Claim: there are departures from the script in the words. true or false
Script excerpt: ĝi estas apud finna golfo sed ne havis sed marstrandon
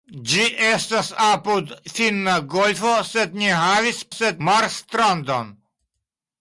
false